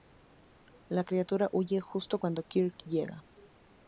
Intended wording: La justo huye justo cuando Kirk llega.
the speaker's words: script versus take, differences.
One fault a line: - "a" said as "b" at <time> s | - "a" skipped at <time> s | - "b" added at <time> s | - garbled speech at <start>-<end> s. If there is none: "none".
- "justo" said as "criatura" at 1.0 s